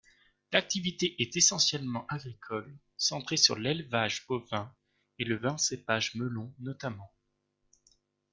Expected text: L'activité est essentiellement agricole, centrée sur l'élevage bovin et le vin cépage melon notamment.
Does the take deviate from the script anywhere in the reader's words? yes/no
no